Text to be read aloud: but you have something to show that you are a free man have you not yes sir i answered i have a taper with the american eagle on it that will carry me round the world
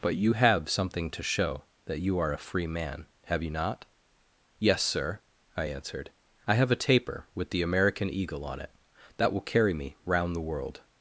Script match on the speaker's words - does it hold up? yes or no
yes